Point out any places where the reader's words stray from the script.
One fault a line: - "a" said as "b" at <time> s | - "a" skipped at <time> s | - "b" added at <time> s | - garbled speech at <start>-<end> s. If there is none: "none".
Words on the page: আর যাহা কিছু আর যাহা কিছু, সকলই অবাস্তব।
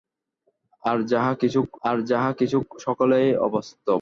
none